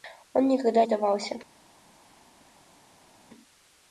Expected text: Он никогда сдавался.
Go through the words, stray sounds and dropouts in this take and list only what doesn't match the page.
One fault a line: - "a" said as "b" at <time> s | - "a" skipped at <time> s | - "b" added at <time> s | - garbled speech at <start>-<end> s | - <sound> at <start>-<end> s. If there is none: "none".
none